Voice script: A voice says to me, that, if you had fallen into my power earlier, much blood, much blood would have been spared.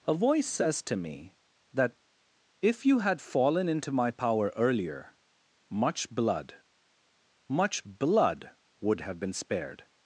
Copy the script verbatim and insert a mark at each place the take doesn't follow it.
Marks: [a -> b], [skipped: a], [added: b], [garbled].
A voice says to me, that, if you had fallen into my power earlier, much blood, much blood would have been spared.